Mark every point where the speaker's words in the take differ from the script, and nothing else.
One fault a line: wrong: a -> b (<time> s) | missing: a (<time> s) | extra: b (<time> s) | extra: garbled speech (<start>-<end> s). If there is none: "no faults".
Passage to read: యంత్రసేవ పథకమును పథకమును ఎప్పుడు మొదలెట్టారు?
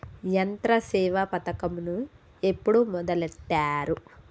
missing: పథకమును (2.0 s)